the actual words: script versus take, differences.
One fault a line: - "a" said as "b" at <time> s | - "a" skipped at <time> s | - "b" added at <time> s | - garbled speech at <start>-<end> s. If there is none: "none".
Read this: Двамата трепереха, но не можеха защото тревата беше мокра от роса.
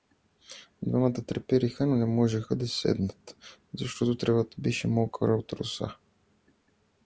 - "да седнат" added at 2.5 s